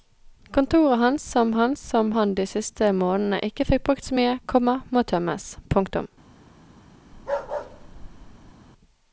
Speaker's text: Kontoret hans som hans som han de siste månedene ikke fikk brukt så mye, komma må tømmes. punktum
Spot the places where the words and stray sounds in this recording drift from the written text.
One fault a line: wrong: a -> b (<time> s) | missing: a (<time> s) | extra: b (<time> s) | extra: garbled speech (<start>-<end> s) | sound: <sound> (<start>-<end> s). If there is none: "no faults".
sound: bark (7.1-8.5 s)